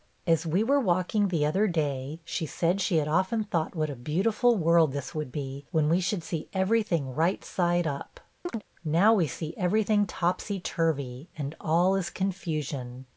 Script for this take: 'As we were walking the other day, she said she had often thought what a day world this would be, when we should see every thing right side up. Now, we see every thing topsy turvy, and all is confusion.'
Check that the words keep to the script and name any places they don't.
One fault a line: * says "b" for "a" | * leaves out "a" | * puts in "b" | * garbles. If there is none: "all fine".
* says "beautiful" for "day"